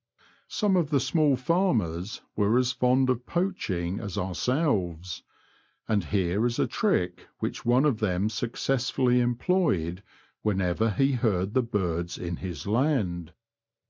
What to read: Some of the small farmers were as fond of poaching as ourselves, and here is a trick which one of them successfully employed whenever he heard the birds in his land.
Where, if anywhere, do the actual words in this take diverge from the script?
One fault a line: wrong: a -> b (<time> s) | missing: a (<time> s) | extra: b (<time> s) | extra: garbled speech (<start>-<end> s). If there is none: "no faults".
no faults